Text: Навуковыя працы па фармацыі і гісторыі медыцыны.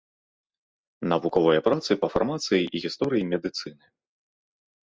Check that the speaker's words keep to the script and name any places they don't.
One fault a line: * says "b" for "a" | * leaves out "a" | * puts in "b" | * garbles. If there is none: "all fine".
all fine